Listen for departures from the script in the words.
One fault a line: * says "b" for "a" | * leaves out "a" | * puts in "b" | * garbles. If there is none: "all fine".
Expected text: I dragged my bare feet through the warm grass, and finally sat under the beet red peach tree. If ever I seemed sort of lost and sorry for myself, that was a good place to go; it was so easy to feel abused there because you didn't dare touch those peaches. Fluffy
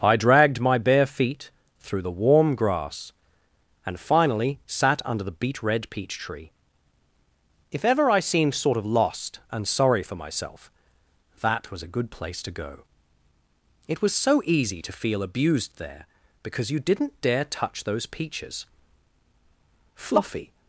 all fine